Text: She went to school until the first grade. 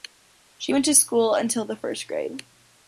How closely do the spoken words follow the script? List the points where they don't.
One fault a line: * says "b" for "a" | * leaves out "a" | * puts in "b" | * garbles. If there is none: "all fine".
all fine